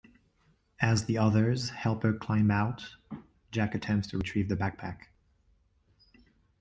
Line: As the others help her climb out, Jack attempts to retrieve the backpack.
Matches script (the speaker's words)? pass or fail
pass